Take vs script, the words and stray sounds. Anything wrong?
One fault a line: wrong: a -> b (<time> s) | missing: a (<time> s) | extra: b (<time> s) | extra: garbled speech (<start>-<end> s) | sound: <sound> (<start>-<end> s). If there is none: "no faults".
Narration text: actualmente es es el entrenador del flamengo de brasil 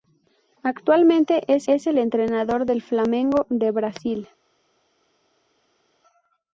no faults